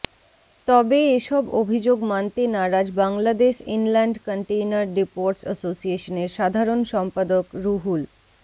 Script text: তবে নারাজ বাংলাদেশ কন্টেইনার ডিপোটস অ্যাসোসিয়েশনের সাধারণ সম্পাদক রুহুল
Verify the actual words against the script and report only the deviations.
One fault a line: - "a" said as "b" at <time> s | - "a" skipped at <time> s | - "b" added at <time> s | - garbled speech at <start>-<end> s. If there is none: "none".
- "এসব অভিযোগ মানতে" added at 1.2 s
- "ইনল্যান্ড" added at 3.8 s